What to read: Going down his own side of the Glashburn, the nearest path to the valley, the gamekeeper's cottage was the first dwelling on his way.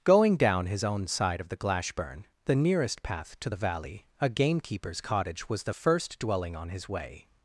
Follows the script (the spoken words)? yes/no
no